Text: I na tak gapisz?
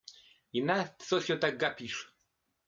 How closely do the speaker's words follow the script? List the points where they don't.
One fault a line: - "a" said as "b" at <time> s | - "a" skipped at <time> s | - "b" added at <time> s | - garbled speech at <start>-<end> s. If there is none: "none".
- "co się" added at 0.9 s